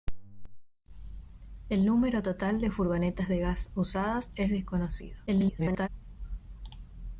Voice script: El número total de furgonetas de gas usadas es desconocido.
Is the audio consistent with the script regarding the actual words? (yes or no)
no